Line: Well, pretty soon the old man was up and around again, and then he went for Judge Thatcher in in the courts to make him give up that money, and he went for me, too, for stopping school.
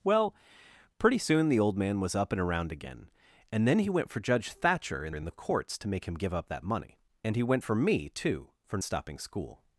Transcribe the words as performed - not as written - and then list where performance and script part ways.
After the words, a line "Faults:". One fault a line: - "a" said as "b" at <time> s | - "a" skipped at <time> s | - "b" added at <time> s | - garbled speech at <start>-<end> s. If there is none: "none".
Well, pretty soon the old man was up and around again, and then he went for Judge Thatcher in in the courts to make him give up that money, and he went for me, too, for stopping school.
Faults:
none